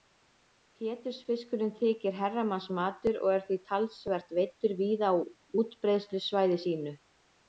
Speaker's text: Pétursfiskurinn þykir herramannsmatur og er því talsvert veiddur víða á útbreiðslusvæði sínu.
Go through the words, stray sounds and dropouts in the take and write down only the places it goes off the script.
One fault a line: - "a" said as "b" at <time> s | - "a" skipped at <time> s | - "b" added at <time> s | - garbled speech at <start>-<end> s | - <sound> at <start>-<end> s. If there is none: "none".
none